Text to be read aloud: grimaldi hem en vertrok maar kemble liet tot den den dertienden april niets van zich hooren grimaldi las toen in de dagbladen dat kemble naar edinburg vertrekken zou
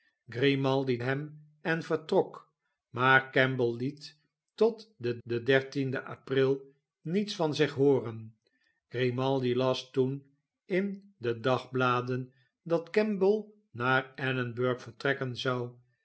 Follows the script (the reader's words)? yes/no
yes